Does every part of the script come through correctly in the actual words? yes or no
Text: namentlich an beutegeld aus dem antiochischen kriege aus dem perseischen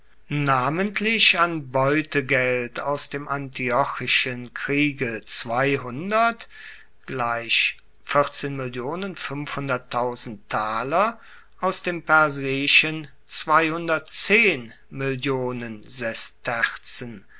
yes